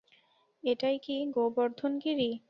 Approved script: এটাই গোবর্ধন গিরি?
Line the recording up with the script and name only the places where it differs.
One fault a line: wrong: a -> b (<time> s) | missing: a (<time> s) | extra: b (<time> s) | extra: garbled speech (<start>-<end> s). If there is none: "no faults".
extra: কি (1.0 s)